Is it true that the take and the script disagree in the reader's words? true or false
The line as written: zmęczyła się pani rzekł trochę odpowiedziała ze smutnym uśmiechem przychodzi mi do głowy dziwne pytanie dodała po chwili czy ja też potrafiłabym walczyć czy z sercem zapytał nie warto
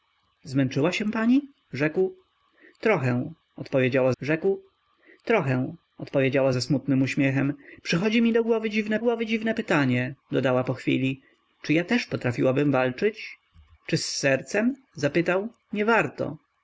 true